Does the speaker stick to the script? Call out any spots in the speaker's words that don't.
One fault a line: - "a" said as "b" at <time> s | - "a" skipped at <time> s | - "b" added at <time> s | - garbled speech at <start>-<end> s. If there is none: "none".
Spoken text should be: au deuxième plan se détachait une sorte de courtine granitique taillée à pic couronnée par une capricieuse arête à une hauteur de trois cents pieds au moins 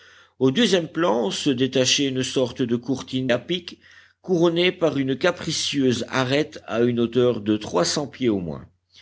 - "granitique taillée" skipped at 3.3 s